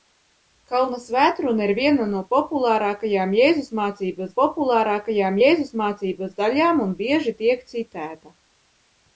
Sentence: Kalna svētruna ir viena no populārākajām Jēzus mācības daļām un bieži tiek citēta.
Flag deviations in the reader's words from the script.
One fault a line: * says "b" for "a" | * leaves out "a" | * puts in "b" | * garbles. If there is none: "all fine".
* puts in "populārākajām Jēzus mācības"